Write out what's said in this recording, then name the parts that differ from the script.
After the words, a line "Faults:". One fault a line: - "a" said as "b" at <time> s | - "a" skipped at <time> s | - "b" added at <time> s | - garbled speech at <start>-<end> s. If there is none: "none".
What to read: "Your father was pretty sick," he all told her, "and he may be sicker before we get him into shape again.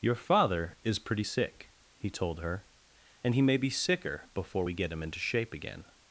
"Your father is pretty sick," he told her, "and he may be sicker before we get him into shape again.
Faults:
- "was" said as "is" at 0.8 s
- "all" skipped at 2.1 s